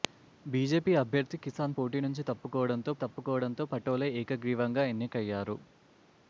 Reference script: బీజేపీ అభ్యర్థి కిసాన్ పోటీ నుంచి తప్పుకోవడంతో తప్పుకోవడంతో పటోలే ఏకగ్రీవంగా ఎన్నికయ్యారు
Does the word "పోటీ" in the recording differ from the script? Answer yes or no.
no